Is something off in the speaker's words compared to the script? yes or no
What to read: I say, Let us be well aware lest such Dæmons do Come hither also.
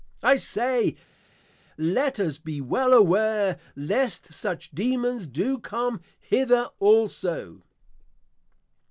no